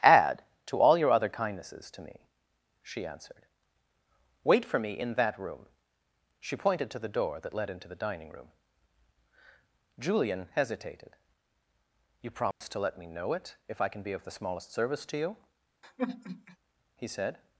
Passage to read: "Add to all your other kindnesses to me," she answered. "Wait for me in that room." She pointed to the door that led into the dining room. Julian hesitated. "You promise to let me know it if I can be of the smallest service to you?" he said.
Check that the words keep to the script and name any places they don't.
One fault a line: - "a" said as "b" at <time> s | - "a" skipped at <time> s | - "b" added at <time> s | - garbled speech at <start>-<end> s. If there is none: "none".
none